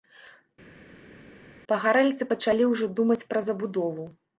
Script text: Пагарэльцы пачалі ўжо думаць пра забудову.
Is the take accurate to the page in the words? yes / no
yes